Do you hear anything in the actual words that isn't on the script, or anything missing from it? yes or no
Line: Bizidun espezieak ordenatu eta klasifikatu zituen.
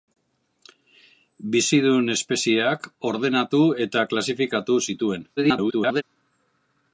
yes